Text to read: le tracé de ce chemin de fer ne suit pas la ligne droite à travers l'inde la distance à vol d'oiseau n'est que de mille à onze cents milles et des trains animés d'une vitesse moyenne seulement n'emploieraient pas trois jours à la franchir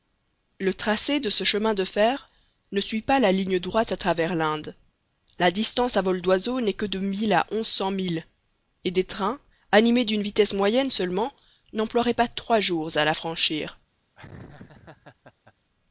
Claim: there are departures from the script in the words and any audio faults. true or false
true